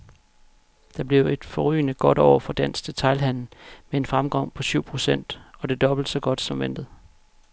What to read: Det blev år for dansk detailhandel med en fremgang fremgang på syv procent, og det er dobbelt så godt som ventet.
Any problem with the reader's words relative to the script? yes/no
yes